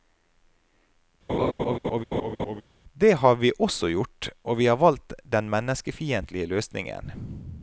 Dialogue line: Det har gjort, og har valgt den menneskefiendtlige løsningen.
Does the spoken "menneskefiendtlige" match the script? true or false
true